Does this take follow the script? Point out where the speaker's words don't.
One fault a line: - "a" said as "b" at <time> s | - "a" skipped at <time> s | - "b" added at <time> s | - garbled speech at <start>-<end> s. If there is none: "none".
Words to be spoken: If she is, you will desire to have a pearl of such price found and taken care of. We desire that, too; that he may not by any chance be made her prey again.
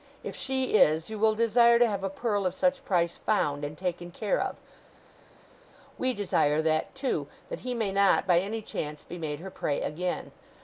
none